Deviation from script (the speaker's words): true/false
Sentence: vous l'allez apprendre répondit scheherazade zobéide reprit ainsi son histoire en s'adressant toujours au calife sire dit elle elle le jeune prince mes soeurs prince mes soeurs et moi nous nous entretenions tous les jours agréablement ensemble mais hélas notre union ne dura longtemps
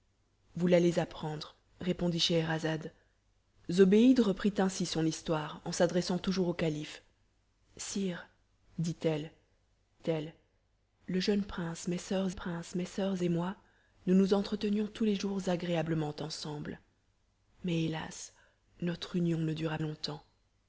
false